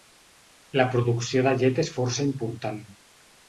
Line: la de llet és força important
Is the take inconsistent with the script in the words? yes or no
yes